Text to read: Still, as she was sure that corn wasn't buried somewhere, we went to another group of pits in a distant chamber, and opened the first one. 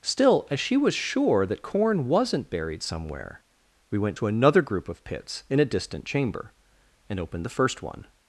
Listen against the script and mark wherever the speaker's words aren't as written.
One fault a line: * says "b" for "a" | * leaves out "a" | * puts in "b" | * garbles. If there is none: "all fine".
all fine